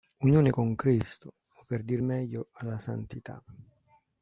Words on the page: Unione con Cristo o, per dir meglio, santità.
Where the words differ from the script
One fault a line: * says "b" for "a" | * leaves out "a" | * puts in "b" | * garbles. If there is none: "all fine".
* puts in "alla"